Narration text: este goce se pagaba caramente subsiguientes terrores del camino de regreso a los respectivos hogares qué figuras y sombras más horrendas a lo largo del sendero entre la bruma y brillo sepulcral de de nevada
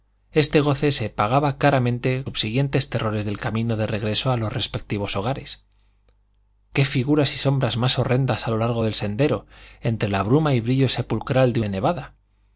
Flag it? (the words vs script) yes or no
no